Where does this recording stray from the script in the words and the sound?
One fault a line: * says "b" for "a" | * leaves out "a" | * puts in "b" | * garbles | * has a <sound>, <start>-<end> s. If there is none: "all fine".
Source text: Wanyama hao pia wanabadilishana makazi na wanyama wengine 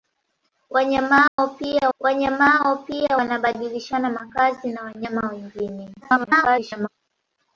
* has a dropout, 1.3-1.4 s
* puts in "wanyama hao pia"
* garbles